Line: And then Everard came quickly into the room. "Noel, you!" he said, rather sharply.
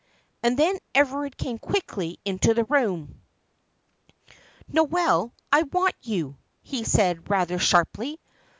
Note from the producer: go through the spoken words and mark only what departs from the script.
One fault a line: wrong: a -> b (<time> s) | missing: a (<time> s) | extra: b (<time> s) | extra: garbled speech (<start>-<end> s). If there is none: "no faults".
extra: I want (5.5 s)